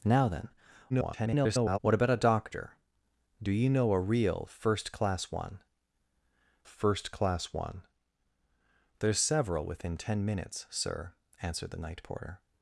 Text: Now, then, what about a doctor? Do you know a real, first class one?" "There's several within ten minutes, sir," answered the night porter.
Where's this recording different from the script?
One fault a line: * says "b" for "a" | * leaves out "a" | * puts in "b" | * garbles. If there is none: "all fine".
* garbles
* puts in "first class one"